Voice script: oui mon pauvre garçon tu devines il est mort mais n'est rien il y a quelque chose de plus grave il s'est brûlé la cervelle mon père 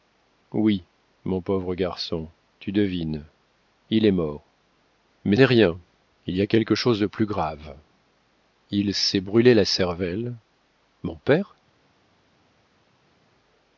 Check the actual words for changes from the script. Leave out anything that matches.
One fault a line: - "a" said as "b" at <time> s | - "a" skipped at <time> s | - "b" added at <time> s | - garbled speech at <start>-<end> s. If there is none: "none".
none